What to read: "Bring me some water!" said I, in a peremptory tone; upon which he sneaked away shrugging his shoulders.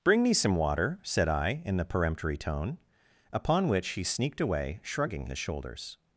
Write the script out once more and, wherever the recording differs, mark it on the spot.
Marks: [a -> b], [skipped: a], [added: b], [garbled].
"Bring me some water!" said I, in [a -> the] peremptory tone; upon which he sneaked away shrugging his shoulders.